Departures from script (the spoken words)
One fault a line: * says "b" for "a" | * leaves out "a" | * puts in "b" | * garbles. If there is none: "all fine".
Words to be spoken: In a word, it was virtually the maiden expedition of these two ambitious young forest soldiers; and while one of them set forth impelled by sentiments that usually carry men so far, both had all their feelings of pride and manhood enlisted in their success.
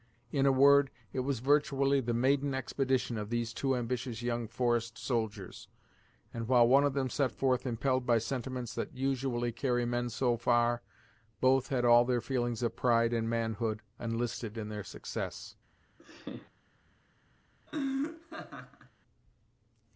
all fine